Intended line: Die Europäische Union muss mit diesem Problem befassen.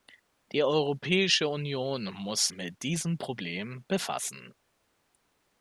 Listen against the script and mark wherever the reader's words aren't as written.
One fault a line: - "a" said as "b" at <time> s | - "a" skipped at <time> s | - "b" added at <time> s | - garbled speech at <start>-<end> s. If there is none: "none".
none